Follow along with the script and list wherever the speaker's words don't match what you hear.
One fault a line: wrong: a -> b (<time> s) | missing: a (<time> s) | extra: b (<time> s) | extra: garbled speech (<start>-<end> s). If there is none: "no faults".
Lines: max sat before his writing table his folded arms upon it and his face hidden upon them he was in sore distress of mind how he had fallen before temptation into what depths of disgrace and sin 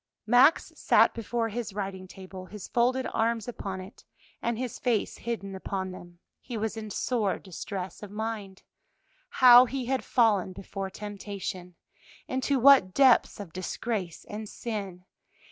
no faults